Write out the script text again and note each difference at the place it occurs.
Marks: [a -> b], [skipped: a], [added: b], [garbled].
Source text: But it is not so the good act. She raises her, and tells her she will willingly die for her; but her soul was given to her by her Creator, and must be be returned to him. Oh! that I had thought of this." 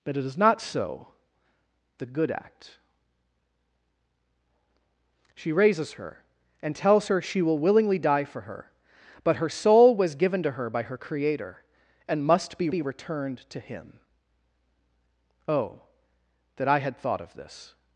But it is not so the good act. She raises her, and tells her she will willingly die for her; but her soul was given to her by her Creator, and must be be returned to him. Oh! that I had thought of this."